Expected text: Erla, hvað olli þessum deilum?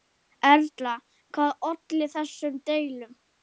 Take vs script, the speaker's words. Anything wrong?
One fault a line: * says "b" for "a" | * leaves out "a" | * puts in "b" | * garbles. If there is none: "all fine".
all fine